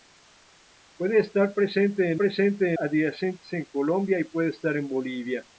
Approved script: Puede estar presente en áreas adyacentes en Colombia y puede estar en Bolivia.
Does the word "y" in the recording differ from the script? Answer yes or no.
no